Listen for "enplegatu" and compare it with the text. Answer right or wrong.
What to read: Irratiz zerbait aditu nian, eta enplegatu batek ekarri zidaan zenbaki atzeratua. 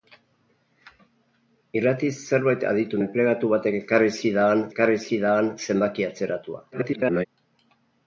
wrong